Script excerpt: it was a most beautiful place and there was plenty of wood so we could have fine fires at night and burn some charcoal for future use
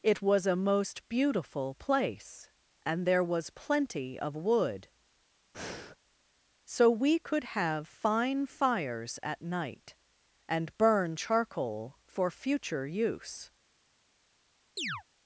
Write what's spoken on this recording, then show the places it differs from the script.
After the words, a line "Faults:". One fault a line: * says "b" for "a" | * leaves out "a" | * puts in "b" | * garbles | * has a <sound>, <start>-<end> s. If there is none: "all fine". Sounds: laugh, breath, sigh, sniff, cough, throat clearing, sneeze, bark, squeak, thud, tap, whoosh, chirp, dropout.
it was a most beautiful place and there was plenty of wood so we could have fine fires at night and burn charcoal for future use
Faults:
* has a breath, 5.5-6.0 s
* leaves out "some"
* has a chirp, 14.8-15.0 s